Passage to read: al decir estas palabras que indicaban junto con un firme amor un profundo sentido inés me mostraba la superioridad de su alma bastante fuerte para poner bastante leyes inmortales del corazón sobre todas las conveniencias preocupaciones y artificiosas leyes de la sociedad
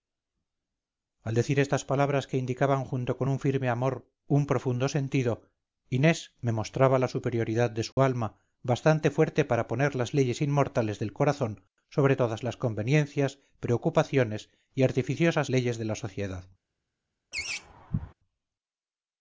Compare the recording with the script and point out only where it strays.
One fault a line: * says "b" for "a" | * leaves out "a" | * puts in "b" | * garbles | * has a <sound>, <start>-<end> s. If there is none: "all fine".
* has a dropout, 7.9-8.0 s
* says "las" for "bastante"
* has a laugh, 17.3-18.1 s